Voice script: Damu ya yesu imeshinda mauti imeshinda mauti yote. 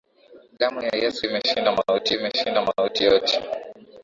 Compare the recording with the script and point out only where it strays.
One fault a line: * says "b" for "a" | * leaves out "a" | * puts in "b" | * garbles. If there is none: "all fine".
all fine